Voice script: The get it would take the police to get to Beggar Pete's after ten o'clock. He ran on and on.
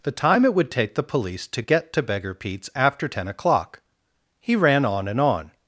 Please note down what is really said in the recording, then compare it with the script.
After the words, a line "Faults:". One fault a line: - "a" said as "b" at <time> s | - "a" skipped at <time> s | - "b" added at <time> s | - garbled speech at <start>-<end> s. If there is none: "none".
The time it would take the police to get to Beggar Pete's after ten o'clock. He ran on and on.
Faults:
- "get" said as "time" at 0.1 s